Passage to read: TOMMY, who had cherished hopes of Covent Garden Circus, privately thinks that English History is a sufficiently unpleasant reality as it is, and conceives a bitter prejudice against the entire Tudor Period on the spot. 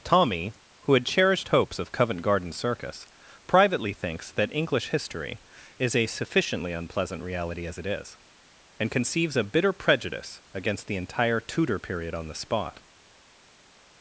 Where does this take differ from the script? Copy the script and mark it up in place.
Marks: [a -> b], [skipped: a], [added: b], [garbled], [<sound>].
TOMMY, who had cherished hopes of Covent Garden Circus, privately thinks that English History is a sufficiently unpleasant reality as it is, and conceives a bitter prejudice against the entire Tudor Period on the spot.